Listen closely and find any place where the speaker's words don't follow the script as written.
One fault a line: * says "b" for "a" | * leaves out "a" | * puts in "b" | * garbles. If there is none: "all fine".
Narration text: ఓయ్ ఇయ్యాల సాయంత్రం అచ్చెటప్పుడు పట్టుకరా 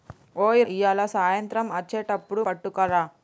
all fine